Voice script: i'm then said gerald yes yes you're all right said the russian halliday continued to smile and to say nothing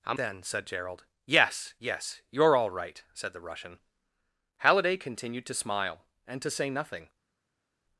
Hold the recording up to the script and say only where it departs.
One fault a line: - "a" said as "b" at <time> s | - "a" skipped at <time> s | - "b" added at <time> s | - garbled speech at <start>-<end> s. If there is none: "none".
none